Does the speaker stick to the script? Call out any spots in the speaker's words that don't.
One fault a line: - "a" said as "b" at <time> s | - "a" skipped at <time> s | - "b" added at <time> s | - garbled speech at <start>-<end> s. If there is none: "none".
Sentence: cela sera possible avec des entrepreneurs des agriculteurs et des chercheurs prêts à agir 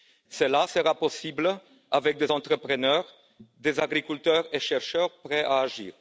none